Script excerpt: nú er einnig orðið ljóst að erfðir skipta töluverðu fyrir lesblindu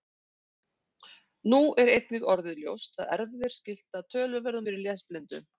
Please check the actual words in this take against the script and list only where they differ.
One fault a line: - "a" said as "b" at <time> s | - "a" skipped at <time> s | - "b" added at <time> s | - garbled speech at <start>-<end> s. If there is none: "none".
none